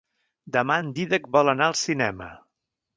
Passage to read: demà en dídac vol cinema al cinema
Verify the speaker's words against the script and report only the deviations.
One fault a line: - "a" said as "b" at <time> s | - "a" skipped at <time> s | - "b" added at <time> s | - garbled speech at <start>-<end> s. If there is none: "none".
- "cinema" said as "anar" at 1.6 s